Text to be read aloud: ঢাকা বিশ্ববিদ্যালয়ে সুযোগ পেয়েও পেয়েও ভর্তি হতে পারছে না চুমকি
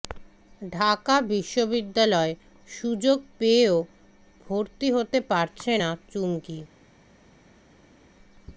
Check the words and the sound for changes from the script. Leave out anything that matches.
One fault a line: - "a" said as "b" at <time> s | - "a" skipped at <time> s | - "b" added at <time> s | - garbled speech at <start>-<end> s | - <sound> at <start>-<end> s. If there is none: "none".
- "পেয়েও" skipped at 3.8 s